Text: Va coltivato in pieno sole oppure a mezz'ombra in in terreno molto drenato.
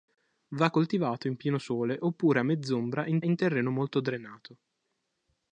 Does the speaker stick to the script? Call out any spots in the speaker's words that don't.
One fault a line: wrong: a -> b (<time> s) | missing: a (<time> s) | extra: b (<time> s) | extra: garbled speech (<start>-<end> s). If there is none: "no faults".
no faults